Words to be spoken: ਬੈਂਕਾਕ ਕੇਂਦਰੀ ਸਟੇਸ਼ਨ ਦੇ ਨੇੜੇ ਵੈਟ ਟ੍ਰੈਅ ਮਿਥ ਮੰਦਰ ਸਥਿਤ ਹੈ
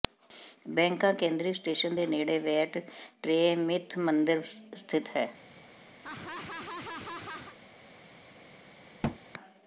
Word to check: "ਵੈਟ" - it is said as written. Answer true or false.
true